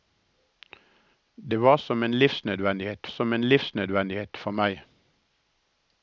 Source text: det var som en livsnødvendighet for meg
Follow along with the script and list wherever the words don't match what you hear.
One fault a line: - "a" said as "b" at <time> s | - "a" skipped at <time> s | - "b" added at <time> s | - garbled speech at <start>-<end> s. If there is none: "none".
- "som en livsnødvendighet" added at 3.1 s